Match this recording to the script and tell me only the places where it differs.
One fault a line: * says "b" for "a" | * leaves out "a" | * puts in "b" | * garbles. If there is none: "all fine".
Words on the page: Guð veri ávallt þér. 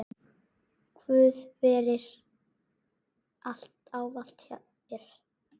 all fine